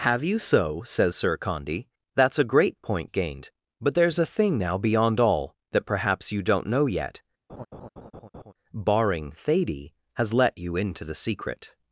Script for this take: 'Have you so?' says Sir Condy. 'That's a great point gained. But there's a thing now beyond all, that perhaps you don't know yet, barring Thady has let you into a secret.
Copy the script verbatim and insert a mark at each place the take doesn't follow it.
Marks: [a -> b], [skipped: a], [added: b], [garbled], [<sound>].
'Have you so?' says Sir Condy. 'That's a great point gained. But there's a thing now beyond all, that perhaps you don't know yet, [laugh] barring Thady has let you into [a -> the] secret.